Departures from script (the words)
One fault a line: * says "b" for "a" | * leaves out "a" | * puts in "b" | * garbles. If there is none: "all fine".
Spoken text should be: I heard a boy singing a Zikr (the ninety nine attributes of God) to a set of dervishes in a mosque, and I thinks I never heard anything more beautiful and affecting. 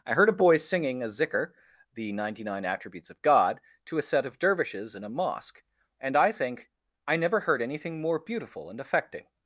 * says "think" for "thinks"